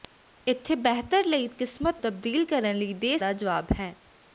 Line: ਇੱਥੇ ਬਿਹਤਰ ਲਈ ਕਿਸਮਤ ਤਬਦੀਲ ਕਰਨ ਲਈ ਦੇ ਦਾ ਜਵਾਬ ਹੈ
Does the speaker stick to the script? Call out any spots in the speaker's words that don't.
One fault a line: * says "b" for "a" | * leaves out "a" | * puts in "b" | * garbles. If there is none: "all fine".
all fine